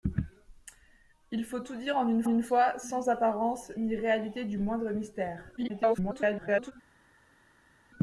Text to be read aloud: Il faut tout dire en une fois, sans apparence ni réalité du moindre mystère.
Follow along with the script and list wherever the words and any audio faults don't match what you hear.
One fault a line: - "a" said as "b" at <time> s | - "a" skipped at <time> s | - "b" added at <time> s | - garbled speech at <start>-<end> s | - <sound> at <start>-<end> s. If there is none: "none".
- "une" added at 2.3 s
- garbled speech at 5.6-6.7 s